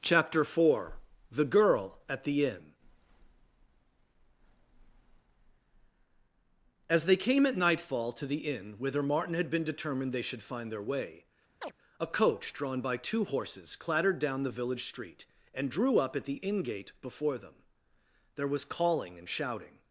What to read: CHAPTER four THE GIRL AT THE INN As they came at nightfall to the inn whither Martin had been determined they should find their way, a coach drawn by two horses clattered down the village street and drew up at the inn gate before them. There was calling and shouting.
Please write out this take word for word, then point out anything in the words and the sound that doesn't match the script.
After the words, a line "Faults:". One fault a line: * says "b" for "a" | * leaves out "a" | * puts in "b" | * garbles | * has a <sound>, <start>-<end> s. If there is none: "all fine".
CHAPTER four THE GIRL AT THE INN As they came at nightfall to the inn whither Martin had been determined they should find their way, a coach drawn by two horses clattered down the village street and drew up at the inn gate before them. There was calling and shouting.
Faults:
* has a chirp, 11.6-11.7 s